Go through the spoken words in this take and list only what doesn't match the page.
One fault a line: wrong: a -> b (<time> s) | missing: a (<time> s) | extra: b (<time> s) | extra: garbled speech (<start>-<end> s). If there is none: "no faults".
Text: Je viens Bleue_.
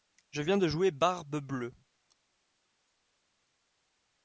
extra: de jouer Barbe (0.6 s)